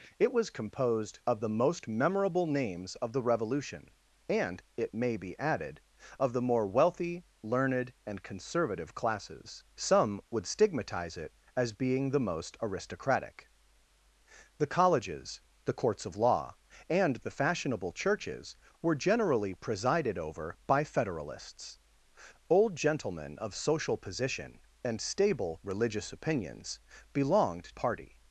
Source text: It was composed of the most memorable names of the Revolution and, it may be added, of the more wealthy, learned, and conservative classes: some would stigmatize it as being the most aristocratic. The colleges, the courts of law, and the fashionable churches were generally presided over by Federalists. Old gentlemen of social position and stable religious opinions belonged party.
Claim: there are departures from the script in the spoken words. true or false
false